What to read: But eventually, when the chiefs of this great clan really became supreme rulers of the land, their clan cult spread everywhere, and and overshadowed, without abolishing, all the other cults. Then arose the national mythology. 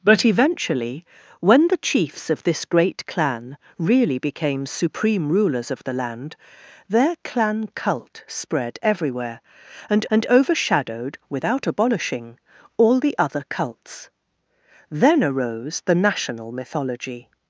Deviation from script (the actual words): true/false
false